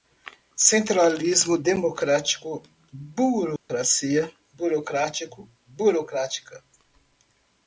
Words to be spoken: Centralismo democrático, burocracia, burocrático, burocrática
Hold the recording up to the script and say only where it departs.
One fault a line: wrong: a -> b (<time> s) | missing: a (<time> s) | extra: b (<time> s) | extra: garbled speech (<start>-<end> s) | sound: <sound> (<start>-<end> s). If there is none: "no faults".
sound: dropout (3.6-3.7 s)